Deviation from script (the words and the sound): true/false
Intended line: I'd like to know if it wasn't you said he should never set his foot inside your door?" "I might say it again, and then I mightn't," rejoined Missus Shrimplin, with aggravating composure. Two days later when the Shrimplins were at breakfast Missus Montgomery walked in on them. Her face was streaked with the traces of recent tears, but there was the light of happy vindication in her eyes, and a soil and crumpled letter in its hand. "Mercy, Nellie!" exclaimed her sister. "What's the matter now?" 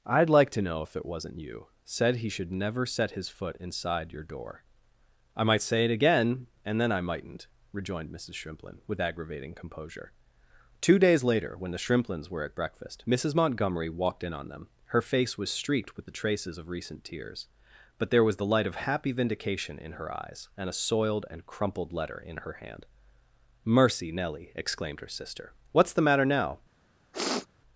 true